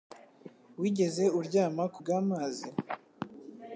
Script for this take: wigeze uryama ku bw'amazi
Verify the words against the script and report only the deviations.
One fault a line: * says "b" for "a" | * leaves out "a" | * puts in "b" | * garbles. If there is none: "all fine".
all fine